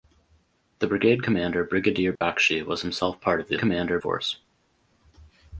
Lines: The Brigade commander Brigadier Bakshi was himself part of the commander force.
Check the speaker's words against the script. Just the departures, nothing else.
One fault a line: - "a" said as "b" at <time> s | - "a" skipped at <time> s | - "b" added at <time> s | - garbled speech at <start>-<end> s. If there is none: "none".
none